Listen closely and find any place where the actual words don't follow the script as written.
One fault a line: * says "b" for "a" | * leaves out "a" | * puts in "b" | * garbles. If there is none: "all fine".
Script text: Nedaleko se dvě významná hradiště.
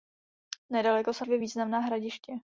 all fine